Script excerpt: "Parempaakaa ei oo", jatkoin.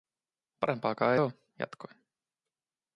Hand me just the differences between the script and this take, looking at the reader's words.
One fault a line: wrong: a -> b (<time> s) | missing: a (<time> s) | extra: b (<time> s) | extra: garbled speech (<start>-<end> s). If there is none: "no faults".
missing: ei (1.1 s)